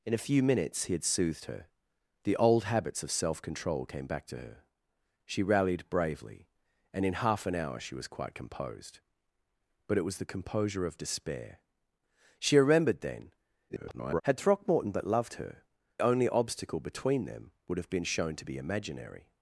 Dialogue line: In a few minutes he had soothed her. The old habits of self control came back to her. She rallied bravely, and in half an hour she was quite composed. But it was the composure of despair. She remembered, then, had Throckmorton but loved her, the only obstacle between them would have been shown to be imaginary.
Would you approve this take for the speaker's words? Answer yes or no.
no